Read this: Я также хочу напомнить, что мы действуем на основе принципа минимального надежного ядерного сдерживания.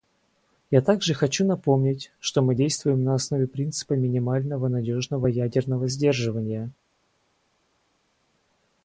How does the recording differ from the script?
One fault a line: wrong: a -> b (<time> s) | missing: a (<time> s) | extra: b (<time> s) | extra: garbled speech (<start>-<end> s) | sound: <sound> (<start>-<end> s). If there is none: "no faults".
no faults